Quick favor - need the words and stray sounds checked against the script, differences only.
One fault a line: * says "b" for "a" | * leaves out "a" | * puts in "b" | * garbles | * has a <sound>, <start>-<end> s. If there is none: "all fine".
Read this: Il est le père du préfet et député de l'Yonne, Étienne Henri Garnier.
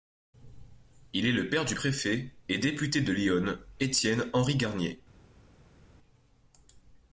all fine